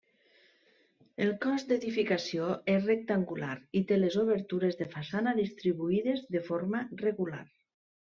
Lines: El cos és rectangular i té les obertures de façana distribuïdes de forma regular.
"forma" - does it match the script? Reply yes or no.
yes